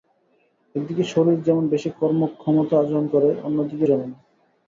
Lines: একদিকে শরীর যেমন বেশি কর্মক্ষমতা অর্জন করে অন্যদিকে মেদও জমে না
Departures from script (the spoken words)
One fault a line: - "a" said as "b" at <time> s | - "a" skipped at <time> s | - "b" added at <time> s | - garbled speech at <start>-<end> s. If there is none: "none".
- "মেদও" skipped at 3.9 s